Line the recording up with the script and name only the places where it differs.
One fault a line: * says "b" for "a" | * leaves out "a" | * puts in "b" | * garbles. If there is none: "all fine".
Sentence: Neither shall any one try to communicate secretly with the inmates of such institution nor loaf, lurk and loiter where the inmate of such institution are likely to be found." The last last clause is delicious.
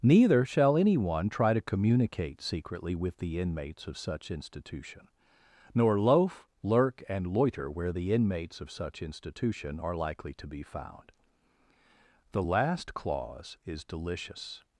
* says "inmates" for "inmate"
* leaves out "last"